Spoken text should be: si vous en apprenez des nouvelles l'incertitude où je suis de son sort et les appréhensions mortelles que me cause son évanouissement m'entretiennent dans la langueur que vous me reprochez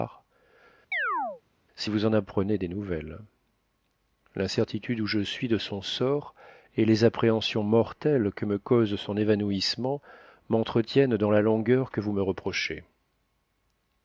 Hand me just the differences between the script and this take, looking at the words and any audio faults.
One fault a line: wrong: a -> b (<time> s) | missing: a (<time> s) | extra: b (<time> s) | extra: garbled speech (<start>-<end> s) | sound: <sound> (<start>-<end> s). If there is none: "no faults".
sound: chirp (0.9-1.4 s)